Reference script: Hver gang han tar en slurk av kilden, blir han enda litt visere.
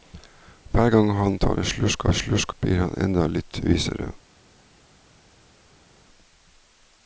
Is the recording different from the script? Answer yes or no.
yes